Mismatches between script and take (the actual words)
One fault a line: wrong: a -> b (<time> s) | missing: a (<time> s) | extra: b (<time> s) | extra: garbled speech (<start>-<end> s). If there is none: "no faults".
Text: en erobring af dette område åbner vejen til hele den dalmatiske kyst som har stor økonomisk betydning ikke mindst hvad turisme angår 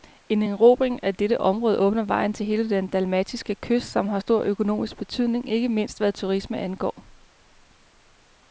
no faults